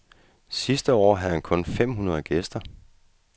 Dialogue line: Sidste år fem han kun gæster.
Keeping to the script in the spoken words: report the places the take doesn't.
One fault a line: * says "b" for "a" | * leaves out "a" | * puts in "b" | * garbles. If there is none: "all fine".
* says "havde" for "fem"
* puts in "fem hundrede"